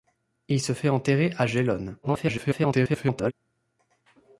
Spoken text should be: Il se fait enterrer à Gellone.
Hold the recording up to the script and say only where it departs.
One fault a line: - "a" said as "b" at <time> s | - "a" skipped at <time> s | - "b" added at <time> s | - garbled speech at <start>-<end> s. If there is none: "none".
- garbled speech at 2.0-3.3 s